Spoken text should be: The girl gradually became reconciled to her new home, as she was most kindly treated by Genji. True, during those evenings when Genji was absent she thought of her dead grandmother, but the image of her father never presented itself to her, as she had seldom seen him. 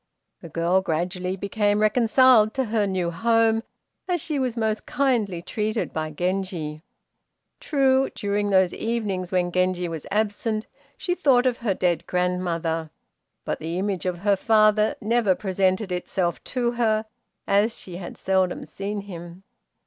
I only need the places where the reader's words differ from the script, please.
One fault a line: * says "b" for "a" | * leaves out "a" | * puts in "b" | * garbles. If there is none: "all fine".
all fine